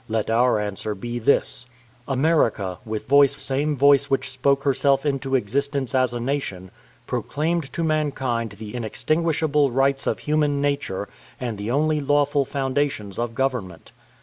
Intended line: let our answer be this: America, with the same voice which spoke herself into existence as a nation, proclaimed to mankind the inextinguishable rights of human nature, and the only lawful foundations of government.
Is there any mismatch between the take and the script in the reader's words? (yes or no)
yes